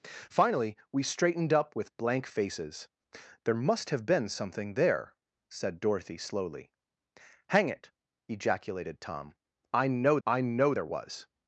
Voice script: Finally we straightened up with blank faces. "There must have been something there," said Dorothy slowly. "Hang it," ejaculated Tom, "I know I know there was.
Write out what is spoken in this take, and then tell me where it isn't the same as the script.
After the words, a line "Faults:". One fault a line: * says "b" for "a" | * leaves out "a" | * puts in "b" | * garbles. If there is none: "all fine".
Finally we straightened up with blank faces. "There must have been something there," said Dorothy slowly. "Hang it," ejaculated Tom, "I know I know there was.
Faults:
all fine